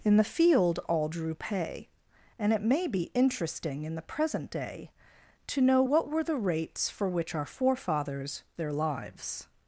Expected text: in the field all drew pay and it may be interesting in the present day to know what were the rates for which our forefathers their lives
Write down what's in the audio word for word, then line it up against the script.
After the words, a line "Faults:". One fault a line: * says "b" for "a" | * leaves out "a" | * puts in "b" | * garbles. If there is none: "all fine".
in the field all drew pay and it may be interesting in the present day to know what were the rates for which our forefathers their lives
Faults:
all fine